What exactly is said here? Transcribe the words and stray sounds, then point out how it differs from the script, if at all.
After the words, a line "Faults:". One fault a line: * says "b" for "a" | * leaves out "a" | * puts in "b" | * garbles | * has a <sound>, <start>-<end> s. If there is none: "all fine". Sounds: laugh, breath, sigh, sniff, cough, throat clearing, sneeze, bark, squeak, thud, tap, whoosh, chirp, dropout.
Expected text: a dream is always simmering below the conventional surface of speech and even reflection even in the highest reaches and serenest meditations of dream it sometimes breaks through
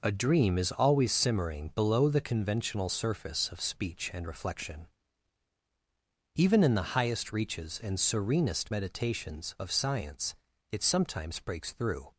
a dream is always simmering below the conventional surface of speech and reflection even in the highest reaches and serenest meditations of science it sometimes breaks through
Faults:
* leaves out "even"
* says "science" for "dream"